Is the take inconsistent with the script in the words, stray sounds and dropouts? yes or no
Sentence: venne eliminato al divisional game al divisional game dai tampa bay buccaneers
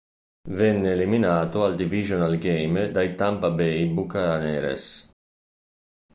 yes